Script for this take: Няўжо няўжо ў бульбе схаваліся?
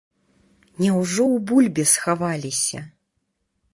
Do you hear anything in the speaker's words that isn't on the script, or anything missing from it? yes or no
yes